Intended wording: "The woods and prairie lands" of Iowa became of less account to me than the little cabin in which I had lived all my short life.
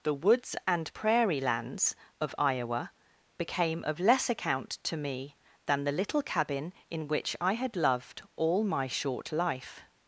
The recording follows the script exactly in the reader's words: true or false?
false